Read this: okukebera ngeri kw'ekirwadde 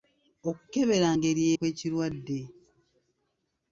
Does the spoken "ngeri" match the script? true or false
true